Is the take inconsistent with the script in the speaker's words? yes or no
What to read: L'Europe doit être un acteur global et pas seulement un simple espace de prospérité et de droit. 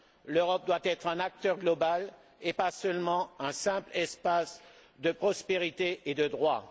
no